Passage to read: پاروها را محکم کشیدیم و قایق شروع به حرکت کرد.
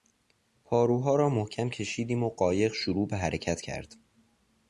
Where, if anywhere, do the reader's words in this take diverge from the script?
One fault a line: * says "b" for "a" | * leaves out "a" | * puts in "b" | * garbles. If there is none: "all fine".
all fine